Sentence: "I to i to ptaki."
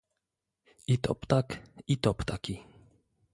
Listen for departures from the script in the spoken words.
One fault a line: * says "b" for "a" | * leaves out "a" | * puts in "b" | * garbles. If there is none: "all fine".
* puts in "ptak"